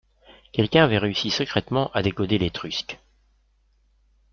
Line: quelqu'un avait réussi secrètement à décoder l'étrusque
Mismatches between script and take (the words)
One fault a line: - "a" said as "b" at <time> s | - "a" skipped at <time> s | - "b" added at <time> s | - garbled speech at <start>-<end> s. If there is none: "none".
none